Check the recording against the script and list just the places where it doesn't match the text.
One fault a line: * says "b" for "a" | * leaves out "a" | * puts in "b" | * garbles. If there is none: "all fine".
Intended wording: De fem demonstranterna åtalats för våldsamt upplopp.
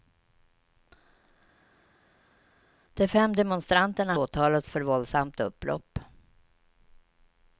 all fine